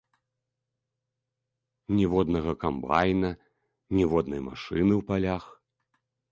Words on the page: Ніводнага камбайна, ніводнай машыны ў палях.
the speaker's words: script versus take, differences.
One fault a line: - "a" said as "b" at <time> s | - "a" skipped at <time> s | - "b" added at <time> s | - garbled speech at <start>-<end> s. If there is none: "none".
none